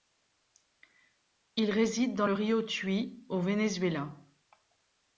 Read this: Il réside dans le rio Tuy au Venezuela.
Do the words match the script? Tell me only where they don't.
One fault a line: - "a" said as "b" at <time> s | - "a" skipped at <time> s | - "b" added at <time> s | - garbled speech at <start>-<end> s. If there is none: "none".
none